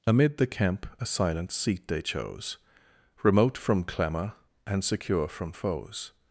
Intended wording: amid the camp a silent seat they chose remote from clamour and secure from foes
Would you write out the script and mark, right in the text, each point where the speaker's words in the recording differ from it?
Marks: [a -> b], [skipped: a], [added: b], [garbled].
amid the camp a silent seat they chose remote from clamour and secure from foes